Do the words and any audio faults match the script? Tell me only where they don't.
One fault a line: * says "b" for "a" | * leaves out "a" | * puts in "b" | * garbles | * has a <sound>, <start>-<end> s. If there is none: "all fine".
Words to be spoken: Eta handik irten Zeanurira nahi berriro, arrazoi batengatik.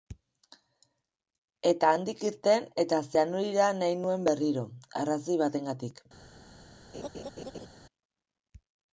* puts in "eta"
* puts in "nuen"
* has a laugh, 6.9-7.7 s